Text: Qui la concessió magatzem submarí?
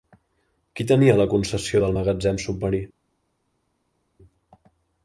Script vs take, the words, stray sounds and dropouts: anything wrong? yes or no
yes